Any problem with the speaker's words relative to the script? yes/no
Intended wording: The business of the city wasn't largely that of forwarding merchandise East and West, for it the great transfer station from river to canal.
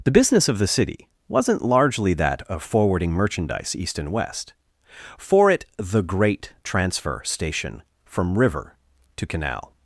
no